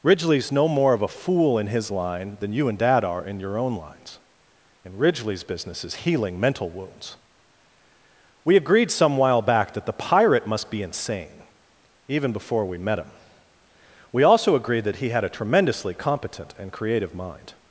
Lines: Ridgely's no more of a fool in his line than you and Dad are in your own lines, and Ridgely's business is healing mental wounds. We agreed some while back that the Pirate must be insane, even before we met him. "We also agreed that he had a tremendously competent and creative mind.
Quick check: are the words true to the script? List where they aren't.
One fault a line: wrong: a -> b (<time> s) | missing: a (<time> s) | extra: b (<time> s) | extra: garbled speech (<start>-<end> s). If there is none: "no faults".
no faults